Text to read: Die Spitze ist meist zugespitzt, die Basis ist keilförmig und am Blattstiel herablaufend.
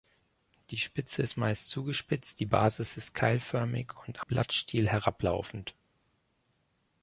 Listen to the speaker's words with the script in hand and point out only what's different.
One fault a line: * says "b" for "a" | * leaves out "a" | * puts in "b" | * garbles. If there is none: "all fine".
* leaves out "am"